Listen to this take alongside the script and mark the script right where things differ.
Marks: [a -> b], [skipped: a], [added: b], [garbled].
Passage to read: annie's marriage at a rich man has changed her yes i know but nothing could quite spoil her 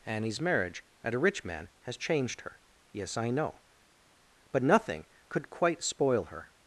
annie's marriage at a rich man has changed her yes i know but nothing could quite spoil her